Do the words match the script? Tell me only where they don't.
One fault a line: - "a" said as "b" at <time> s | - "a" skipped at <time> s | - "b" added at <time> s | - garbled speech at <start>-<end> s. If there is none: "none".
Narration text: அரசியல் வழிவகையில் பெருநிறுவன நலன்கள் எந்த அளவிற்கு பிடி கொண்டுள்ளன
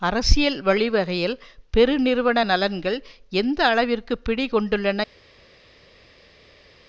none